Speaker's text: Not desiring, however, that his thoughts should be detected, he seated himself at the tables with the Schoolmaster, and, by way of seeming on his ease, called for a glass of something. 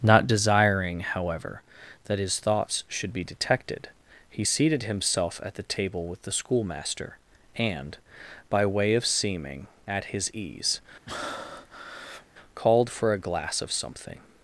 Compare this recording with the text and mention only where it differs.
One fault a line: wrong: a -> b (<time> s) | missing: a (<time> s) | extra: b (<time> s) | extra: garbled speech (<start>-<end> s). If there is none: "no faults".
wrong: tables -> table (5.6 s)
wrong: on -> at (9.9 s)